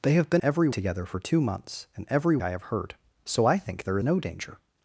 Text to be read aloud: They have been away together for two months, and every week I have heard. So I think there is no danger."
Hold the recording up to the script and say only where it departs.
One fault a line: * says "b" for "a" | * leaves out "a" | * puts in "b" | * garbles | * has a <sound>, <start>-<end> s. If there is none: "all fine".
* says "every" for "away"
* leaves out "week"
* leaves out "is"